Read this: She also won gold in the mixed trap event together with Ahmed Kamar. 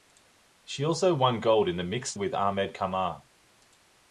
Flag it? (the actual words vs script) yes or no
yes